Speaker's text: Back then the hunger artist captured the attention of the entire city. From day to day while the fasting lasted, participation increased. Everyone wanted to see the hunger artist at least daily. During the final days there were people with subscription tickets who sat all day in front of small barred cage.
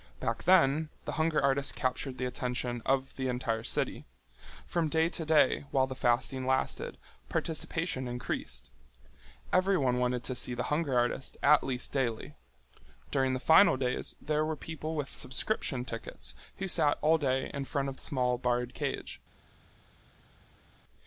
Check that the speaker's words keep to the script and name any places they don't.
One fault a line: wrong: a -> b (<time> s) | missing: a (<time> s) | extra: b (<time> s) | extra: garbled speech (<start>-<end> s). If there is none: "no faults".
no faults